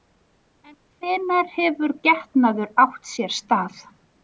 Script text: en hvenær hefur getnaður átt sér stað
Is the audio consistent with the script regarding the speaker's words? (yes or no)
yes